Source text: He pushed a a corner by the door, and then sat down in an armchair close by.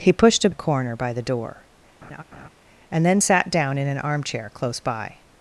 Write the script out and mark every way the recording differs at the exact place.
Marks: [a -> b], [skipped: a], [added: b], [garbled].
He pushed a a corner by the door, and then sat down in an armchair close by.